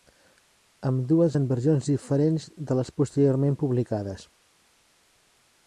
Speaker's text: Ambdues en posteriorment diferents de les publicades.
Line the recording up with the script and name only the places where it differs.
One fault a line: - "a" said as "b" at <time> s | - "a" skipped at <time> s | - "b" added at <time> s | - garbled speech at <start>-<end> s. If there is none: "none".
- "posteriorment" said as "versions" at 1.5 s
- "posteriorment" added at 3.0 s